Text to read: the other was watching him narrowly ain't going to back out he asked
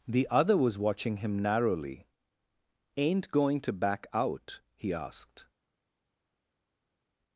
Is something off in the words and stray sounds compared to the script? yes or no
no